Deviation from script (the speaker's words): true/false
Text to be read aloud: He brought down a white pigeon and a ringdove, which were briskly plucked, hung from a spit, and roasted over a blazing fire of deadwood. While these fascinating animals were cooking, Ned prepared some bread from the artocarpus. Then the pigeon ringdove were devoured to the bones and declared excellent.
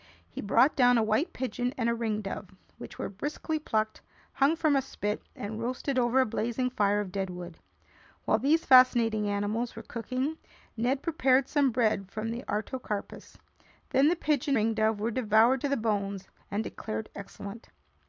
false